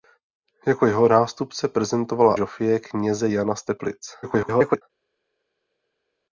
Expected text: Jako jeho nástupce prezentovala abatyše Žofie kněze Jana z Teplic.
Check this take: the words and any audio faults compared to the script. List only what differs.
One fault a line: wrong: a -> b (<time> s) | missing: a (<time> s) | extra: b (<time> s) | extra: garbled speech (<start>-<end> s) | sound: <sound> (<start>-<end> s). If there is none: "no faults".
missing: abatyše (2.4 s)
extra: garbled speech (4.2-4.8 s)